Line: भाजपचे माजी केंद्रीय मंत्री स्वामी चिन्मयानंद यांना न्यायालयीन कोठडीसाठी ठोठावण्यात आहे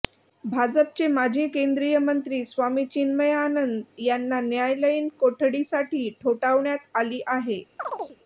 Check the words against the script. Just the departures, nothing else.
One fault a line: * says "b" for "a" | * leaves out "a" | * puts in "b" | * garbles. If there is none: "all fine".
* puts in "आली"